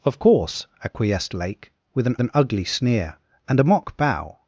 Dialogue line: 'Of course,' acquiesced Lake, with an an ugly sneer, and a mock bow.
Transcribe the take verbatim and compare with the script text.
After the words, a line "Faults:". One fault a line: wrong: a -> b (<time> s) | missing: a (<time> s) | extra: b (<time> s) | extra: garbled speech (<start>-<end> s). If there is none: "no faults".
'Of course,' acquiesced Lake, with an an ugly sneer, and a mock bow.
Faults:
no faults